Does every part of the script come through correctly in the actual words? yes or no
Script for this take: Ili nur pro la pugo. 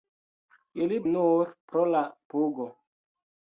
yes